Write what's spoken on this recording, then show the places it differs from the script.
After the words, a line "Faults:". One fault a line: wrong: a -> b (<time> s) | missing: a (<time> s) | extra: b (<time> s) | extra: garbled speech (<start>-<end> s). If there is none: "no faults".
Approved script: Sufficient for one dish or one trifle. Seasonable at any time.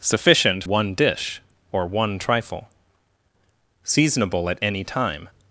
Sufficient one dish or one trifle. Seasonable at any time.
Faults:
missing: for (0.6 s)